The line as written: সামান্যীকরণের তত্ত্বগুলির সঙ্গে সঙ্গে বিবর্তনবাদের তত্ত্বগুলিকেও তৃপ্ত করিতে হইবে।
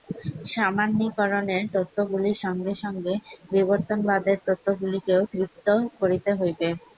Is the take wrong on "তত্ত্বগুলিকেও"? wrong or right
right